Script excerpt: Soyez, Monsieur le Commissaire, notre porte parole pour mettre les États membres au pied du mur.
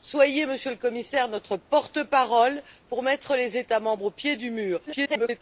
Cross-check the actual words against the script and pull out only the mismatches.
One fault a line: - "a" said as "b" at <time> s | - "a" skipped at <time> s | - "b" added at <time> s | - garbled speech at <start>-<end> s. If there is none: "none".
- garbled speech at 4.9-5.4 s